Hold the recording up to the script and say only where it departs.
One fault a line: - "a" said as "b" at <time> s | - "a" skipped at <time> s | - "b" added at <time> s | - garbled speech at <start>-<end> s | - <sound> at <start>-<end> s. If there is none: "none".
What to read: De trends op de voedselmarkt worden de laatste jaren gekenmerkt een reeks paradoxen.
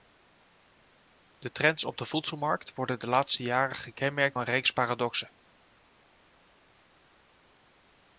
none